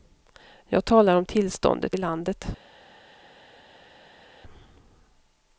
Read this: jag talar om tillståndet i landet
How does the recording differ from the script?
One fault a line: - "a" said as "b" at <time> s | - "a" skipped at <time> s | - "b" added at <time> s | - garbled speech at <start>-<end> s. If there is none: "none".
none